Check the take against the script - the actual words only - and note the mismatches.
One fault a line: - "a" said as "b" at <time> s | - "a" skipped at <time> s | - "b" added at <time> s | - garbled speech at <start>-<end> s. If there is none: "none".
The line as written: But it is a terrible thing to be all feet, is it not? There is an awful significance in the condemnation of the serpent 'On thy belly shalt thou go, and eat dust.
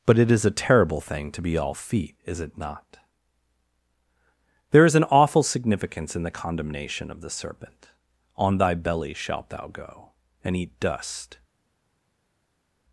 none